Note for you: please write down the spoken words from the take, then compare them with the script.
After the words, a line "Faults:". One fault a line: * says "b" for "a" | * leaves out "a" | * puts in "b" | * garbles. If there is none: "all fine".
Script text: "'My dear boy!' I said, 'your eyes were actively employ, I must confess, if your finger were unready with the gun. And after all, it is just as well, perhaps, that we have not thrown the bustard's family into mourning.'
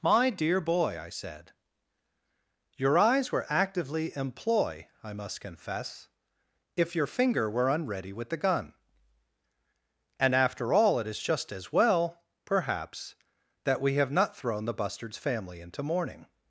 "'My dear boy!' I said, 'your eyes were actively employ, I must confess, if your finger were unready with the gun. And after all, it is just as well, perhaps, that we have not thrown the bustard's family into mourning.'
Faults:
all fine